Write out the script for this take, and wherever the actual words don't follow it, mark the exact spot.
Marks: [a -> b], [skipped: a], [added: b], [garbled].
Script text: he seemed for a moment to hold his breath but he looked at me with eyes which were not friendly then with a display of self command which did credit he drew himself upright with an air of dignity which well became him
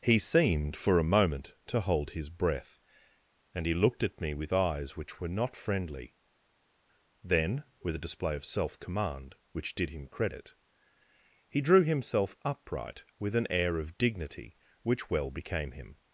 he seemed for a moment to hold his breath [but -> and] he looked at me with eyes which were not friendly then with a display of self command which did [added: him] credit he drew himself upright with an air of dignity which well became him